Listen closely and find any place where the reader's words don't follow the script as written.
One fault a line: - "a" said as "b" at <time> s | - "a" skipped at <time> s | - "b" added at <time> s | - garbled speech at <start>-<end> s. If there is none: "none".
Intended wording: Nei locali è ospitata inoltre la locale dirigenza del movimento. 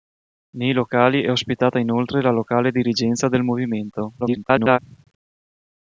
- garbled speech at 4.2-4.8 s